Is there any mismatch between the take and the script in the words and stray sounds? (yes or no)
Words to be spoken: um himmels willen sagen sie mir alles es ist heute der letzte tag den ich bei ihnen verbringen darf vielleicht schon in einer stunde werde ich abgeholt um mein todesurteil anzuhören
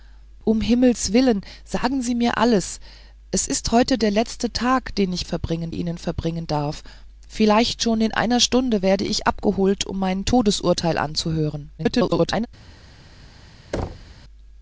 yes